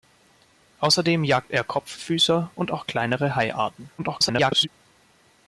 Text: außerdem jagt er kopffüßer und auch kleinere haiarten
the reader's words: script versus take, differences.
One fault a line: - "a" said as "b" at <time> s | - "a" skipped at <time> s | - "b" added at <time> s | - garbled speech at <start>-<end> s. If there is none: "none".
- garbled speech at 4.0-4.7 s